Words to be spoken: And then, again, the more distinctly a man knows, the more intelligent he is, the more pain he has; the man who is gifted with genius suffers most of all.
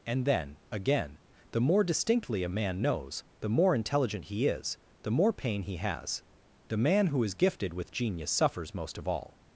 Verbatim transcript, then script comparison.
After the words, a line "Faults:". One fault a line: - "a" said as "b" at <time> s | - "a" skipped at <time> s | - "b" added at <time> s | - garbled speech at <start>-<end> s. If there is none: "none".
And then, again, the more distinctly a man knows, the more intelligent he is, the more pain he has; the man who is gifted with genius suffers most of all.
Faults:
none